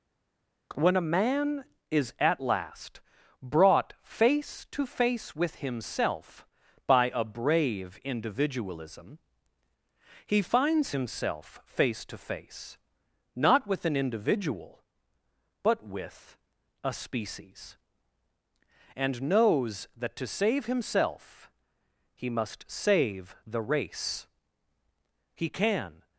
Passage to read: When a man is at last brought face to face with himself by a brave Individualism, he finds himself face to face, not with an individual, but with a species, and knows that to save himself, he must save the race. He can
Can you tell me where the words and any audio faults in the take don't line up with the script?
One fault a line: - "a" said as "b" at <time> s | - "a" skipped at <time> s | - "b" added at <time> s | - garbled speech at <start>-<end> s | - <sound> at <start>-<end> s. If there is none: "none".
none